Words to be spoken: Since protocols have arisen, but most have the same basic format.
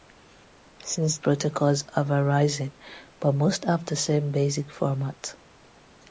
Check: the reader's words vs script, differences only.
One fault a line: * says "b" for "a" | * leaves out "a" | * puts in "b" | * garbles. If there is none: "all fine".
all fine